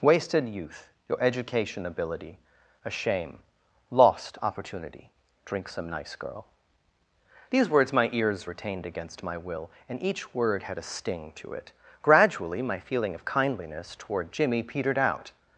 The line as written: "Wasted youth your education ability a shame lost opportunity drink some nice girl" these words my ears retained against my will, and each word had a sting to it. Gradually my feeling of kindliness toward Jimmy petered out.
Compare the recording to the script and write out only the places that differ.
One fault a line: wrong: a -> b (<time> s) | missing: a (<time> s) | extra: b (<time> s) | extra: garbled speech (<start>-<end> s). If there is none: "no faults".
no faults